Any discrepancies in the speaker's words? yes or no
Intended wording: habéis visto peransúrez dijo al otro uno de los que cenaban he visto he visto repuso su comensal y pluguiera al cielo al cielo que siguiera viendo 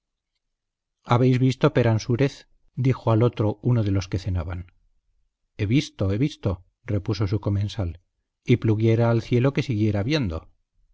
yes